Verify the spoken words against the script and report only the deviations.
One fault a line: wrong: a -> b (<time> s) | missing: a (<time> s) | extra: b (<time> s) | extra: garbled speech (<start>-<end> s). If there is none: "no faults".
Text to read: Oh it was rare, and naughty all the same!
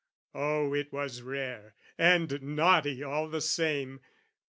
no faults